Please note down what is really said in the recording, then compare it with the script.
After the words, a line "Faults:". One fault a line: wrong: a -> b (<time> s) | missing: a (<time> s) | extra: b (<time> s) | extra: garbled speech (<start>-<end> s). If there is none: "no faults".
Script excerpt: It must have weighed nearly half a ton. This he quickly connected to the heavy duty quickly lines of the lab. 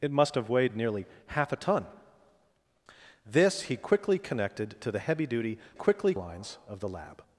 It must have weighed nearly half a ton. This he quickly connected to the heavy duty quickly lines of the lab.
Faults:
no faults